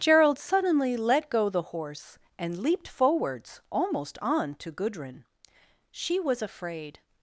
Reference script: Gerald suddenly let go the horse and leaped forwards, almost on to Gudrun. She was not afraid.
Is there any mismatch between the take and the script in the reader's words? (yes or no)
yes